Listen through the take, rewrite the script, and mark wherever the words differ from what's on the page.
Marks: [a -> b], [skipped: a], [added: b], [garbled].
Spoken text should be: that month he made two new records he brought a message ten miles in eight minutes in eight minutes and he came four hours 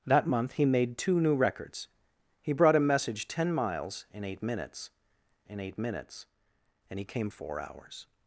that month he made two new records he brought a message ten miles in eight minutes in eight minutes and he came four hours